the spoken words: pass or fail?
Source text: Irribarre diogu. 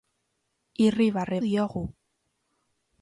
pass